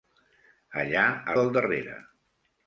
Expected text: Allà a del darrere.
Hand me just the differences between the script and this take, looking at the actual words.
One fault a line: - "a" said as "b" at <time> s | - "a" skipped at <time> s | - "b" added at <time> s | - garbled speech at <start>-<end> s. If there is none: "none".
none